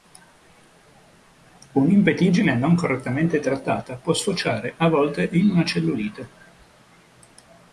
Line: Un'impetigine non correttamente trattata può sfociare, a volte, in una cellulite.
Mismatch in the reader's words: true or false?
false